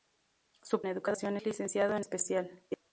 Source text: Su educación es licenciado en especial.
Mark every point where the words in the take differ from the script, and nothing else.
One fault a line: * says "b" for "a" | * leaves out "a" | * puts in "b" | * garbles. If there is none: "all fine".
all fine